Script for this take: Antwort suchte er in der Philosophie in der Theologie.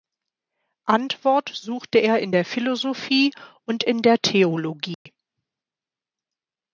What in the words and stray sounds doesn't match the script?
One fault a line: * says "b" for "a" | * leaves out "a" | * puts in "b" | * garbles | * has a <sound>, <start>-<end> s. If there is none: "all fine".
* puts in "und"
* has a dropout, 4.9-5.1 s